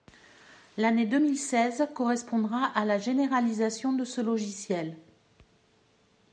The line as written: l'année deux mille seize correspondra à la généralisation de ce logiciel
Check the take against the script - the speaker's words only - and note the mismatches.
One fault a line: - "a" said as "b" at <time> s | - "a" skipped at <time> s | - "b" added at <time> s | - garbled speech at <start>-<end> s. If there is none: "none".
none